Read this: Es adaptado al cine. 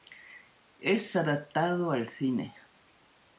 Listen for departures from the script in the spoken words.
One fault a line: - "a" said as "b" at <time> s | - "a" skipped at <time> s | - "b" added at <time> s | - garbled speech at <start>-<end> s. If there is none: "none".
none